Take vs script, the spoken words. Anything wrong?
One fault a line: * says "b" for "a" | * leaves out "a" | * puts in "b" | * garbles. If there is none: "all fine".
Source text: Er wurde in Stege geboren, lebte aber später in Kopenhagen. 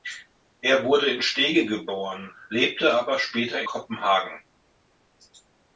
* leaves out "in"